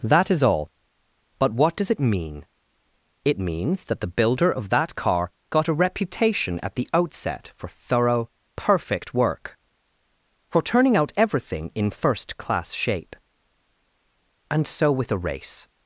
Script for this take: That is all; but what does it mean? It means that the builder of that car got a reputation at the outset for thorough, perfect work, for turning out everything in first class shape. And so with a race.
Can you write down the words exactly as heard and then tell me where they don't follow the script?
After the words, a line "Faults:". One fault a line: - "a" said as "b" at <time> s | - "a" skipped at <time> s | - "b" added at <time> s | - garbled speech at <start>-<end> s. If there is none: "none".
That is all; but what does it mean? It means that the builder of that car got a reputation at the outset for thorough, perfect work, for turning out everything in first class shape. And so with a race.
Faults:
none